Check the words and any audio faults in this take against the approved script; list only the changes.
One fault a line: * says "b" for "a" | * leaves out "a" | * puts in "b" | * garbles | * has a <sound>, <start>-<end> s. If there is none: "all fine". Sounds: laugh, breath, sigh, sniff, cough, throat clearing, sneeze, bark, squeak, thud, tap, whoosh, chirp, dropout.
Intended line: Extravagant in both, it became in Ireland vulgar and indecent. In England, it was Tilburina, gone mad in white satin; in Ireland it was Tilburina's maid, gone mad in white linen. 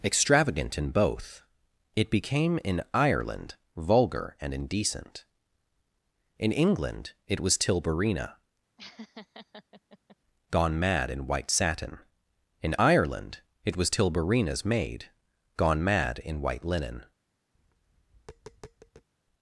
* has a laugh, 8.8-10.2 s
* has a tap, 17.6-19.1 s